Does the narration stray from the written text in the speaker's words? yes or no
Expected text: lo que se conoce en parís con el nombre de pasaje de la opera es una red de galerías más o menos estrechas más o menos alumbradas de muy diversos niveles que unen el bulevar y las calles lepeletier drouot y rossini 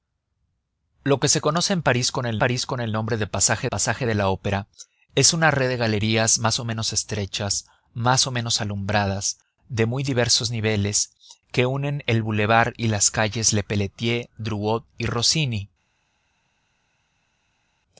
yes